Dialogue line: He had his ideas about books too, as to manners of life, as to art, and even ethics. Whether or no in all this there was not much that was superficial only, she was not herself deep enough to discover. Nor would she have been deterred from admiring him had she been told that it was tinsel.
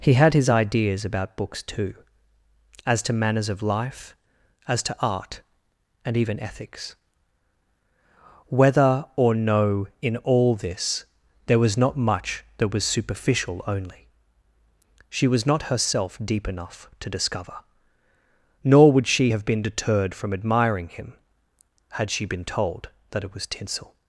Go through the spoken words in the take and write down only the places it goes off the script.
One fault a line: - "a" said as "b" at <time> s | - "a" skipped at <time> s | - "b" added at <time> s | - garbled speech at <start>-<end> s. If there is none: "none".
none